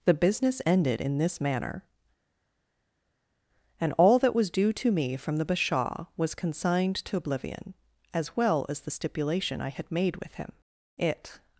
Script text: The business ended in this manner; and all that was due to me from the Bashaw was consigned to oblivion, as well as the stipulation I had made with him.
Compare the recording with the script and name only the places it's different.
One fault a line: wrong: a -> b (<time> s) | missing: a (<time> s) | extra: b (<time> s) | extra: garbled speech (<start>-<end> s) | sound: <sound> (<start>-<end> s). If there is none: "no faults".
extra: It (11.0 s)